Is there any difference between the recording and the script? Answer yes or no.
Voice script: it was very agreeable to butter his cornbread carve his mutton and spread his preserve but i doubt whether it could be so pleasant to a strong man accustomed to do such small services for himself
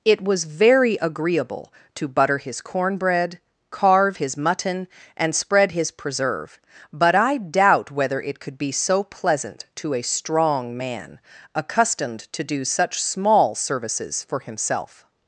no